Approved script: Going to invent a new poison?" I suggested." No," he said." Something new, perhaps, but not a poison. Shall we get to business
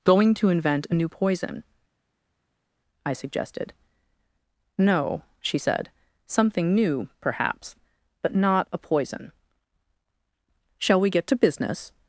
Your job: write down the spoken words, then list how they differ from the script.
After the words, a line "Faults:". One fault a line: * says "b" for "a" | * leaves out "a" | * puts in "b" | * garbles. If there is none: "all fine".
Going to invent a new poison?" I suggested." No," she said." Something new, perhaps, but not a poison. Shall we get to business
Faults:
* says "she" for "he"